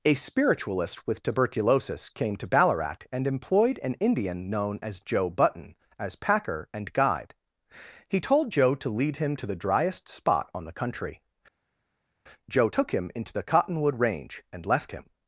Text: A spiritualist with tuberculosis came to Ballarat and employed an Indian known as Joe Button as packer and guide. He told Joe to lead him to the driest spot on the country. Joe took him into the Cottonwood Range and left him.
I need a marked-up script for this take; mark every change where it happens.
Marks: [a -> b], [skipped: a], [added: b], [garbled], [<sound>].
A spiritualist with tuberculosis came to Ballarat and employed an Indian known as Joe Button as packer and guide. He told Joe to lead him to the driest spot on the country. Joe took him into the Cottonwood Range and left him.